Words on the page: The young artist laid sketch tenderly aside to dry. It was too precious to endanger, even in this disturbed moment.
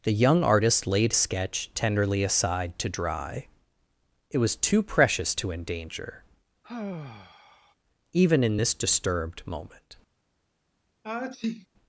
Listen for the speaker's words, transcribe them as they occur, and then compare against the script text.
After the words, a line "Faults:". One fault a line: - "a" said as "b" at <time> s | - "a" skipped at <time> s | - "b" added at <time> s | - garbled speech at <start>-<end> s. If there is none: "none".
The young artist laid sketch tenderly aside to dry. It was too precious to endanger, even in this disturbed moment.
Faults:
none